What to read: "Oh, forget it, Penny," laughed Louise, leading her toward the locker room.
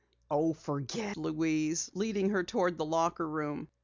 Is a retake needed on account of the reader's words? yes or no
yes